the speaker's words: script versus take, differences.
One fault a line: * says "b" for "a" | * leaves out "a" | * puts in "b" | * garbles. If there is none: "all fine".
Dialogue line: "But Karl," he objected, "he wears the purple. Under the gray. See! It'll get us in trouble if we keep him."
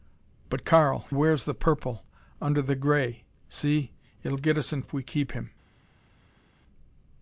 * leaves out "he objected he"
* leaves out "trouble"